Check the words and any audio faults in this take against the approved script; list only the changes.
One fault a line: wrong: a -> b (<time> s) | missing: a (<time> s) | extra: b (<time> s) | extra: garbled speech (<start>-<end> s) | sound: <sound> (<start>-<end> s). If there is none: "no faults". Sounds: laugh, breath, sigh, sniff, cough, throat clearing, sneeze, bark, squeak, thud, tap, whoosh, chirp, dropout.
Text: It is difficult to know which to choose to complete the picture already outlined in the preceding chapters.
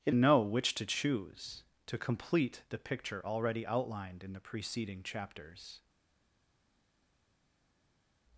missing: is difficult to (0.1 s)